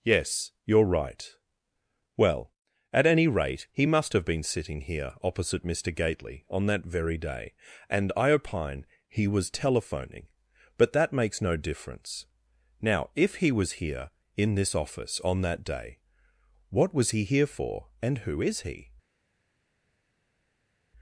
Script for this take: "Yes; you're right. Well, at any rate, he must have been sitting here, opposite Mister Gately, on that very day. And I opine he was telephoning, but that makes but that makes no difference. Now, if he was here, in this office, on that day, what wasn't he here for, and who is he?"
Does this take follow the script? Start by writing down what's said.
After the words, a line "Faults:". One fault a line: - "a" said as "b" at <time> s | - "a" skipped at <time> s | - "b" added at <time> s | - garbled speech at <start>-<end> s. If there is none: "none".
"Yes; you're right. Well, at any rate, he must have been sitting here, opposite Mister Gately, on that very day. And I opine he was telephoning, but that makes no difference. Now, if he was here, in this office, on that day, what was he here for, and who is he?"
Faults:
- "but that makes" skipped at 11.4 s
- "wasn't" said as "was" at 16.9 s